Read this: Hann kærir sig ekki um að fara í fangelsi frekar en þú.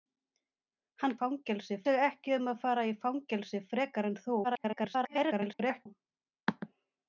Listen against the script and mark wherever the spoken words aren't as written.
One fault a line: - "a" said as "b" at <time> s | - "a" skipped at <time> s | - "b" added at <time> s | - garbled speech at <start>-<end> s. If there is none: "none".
- "kærir" said as "fangelsi" at 1.2 s
- garbled speech at 4.4-5.9 s